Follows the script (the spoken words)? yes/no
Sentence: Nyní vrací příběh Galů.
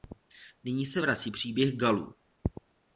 no